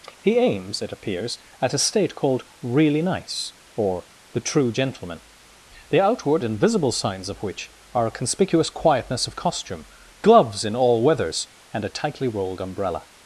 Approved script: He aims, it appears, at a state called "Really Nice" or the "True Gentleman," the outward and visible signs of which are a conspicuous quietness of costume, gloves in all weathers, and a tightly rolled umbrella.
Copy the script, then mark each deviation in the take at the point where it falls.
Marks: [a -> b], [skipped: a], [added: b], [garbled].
He aims, it appears, at a state called "Really Nice" or the "True Gentleman," the outward and visible signs of which are a conspicuous quietness of costume, gloves in all weathers, and a tightly rolled umbrella.